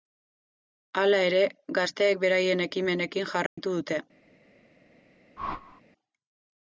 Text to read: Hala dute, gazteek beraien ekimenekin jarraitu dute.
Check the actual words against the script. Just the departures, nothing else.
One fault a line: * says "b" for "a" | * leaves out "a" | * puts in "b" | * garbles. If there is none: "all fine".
* says "ere" for "dute"